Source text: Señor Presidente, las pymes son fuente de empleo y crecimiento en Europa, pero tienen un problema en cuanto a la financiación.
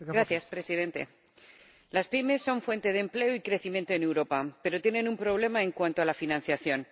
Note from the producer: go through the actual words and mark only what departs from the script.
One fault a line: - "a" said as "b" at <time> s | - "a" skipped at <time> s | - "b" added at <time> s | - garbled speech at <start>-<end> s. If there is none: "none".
none